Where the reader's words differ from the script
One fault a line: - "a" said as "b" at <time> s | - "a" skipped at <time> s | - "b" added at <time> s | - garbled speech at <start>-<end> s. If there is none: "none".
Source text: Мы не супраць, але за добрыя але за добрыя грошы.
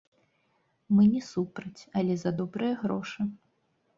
- "але за добрыя" skipped at 2.7 s